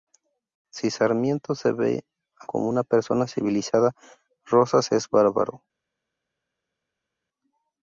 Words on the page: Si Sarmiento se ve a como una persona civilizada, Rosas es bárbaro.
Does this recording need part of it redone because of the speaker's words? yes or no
no